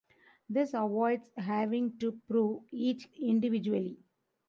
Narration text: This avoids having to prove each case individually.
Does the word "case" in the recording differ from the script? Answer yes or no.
yes